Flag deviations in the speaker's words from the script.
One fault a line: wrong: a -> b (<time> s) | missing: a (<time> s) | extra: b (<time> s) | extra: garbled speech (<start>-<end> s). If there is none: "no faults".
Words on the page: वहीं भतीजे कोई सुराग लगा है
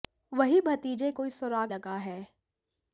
no faults